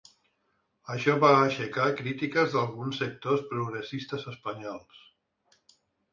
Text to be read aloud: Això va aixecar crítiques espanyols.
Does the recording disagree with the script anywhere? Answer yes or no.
yes